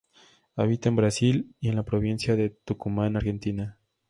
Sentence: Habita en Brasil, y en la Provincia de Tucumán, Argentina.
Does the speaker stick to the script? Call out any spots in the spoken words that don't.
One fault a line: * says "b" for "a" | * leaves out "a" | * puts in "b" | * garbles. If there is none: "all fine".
all fine